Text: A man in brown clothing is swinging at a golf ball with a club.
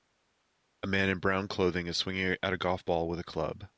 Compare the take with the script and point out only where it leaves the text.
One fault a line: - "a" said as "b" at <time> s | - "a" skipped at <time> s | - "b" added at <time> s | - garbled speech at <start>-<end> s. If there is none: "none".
none